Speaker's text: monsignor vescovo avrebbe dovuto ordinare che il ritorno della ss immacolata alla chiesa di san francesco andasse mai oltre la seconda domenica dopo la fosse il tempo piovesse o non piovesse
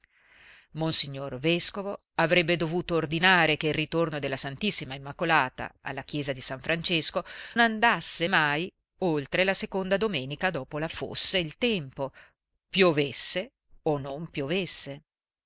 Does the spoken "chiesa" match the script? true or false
true